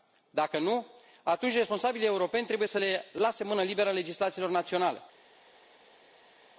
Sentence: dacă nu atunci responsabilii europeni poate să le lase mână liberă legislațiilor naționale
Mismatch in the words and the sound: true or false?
true